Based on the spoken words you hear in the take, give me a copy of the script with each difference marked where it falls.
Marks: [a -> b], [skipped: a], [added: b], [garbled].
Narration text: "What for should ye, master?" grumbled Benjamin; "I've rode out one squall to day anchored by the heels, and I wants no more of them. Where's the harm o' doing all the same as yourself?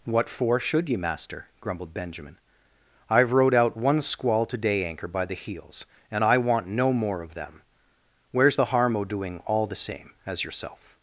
"What for should ye, master?" grumbled Benjamin; "I've rode out one squall to day [anchored -> anchor] by the heels, and I [wants -> want] no more of them. Where's the harm o' doing all the same as yourself?